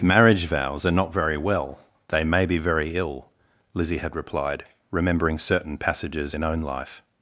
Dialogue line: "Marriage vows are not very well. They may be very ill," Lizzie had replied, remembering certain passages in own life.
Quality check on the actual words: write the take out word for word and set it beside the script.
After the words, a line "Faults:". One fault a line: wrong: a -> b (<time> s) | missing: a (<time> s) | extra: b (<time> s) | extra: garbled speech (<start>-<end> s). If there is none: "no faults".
"Marriage vows are not very well. They may be very ill," Lizzie had replied, remembering certain passages in own life.
Faults:
no faults